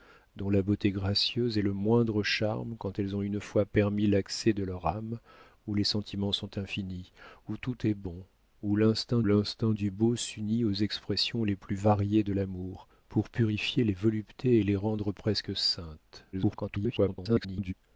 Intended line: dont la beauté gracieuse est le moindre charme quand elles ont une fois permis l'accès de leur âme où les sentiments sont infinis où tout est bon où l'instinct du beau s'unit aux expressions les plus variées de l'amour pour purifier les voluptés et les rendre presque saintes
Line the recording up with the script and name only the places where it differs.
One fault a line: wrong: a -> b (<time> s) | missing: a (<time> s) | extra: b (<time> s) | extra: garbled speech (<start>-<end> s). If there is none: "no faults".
extra: l'instinct (9.2 s)
extra: garbled speech (16.3-17.7 s)